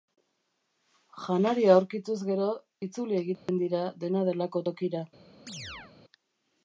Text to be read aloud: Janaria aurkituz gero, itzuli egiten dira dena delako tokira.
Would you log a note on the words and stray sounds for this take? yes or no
yes